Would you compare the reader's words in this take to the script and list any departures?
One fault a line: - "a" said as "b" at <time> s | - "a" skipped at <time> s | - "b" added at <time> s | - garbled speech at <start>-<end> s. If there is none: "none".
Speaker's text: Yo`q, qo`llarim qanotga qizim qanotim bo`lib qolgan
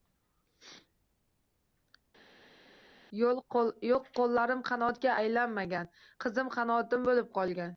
- "aylanmagan" added at 5.2 s